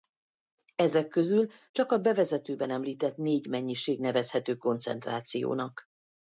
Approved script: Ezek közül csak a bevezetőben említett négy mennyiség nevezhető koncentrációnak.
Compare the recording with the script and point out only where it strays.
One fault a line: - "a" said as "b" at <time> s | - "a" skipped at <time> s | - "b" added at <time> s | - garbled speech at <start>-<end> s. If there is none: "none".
none